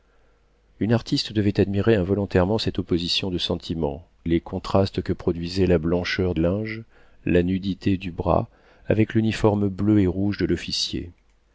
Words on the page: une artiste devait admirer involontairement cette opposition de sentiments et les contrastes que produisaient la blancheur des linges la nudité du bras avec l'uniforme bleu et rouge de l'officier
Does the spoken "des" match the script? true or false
false